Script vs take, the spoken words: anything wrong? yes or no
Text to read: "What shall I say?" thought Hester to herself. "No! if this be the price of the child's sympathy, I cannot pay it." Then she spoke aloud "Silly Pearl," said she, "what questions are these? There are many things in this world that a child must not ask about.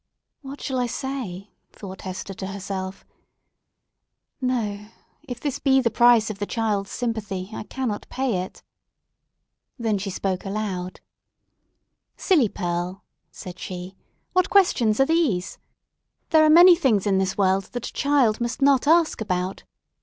no